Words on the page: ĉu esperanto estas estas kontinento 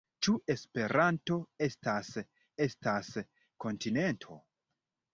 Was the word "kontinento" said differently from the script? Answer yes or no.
no